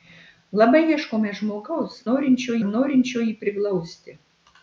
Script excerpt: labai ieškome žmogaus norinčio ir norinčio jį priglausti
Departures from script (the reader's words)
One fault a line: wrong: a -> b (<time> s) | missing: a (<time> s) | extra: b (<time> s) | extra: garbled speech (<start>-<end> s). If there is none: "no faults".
no faults